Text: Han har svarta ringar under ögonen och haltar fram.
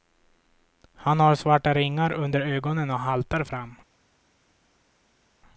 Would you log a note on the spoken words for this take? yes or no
no